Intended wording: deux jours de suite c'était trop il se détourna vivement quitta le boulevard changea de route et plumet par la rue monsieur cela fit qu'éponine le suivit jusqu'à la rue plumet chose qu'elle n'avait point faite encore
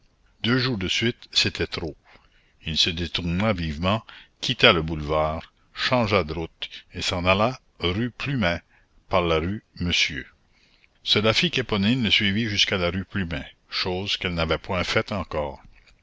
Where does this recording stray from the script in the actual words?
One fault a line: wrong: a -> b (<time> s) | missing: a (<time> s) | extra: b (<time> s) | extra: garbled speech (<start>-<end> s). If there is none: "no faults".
extra: s'en alla rue (7.0 s)